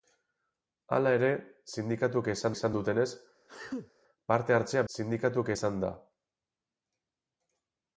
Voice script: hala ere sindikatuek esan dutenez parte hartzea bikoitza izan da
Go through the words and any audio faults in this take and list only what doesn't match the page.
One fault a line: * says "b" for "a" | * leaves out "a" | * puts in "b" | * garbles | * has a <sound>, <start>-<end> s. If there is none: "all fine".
* puts in "esan"
* has a sneeze, 3.5-3.9 s
* says "sindikatuek" for "bikoitza"